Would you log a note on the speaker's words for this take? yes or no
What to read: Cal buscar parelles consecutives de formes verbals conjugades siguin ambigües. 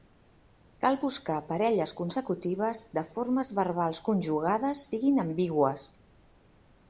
no